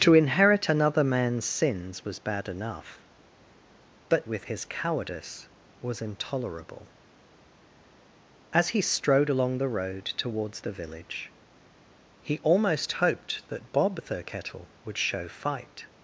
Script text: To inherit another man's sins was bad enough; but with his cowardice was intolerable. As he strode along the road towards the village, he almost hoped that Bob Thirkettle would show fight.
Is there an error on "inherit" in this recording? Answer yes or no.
no